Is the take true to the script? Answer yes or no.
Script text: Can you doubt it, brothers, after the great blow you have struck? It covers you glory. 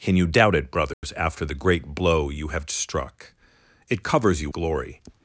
yes